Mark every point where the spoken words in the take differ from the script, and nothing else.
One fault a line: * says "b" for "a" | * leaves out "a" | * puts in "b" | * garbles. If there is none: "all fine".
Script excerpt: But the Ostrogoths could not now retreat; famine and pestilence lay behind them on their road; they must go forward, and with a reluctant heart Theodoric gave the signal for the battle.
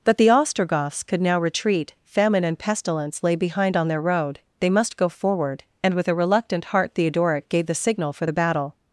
* leaves out "not"
* leaves out "them"